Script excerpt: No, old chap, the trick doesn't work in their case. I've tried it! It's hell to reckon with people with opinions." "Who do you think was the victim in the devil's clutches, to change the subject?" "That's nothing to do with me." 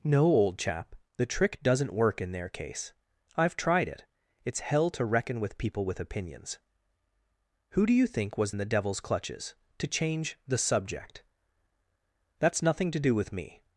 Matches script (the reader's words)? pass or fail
fail